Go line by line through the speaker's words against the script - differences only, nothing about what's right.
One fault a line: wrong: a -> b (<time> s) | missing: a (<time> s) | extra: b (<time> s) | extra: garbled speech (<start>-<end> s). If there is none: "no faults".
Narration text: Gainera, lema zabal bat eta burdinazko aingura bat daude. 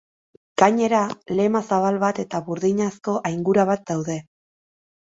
no faults